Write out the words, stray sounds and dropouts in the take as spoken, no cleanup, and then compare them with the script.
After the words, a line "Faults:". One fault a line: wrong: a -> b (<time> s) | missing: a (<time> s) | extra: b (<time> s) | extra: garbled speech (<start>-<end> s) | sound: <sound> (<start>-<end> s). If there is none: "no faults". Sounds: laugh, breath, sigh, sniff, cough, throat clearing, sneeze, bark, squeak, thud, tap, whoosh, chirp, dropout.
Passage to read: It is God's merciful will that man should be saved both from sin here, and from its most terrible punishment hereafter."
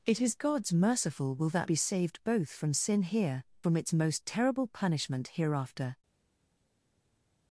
It is God's merciful will that be saved both from sin here, from its most terrible punishment hereafter."
Faults:
missing: man should (1.7 s)
missing: and (3.4 s)